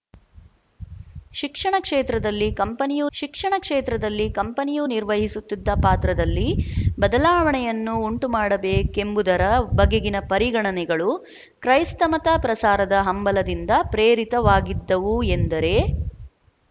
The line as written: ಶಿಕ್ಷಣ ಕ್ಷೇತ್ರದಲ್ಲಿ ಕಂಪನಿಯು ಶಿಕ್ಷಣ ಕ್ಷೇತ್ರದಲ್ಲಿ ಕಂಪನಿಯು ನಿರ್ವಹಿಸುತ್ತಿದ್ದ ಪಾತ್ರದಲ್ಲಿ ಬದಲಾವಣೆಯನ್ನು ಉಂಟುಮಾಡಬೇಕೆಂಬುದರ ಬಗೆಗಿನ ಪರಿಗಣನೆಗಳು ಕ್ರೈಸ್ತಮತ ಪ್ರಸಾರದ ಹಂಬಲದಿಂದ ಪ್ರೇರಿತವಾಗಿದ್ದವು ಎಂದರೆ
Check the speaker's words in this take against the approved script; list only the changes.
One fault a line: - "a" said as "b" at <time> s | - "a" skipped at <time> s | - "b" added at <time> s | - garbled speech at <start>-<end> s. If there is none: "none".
none